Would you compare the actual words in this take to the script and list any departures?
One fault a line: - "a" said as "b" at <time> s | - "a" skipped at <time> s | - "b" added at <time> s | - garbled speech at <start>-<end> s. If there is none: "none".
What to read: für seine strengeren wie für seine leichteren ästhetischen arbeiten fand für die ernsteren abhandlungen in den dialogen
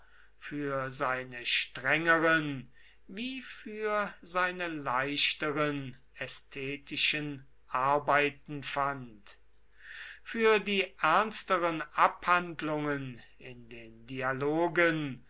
none